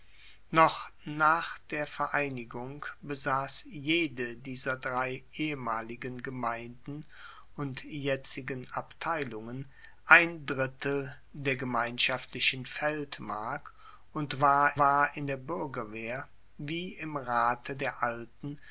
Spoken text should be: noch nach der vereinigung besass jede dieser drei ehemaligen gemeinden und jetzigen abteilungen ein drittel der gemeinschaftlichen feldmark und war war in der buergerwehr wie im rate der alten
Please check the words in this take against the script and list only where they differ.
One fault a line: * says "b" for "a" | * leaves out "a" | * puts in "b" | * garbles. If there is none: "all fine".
all fine